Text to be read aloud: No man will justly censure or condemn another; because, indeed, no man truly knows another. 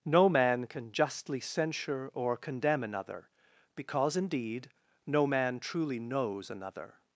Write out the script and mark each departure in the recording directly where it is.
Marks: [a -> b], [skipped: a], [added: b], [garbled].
No man [will -> can] justly censure or condemn another; because, indeed, no man truly knows another.